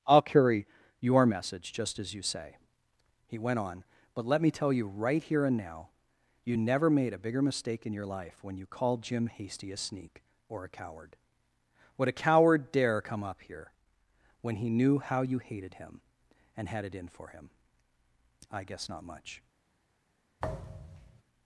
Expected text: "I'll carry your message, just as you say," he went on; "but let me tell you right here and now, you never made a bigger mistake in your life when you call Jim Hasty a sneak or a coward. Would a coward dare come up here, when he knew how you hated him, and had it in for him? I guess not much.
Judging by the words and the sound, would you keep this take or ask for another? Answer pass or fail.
fail